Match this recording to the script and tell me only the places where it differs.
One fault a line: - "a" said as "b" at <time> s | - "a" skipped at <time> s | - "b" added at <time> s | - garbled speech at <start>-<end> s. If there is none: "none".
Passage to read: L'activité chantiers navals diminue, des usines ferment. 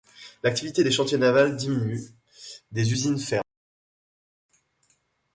- "des" added at 0.8 s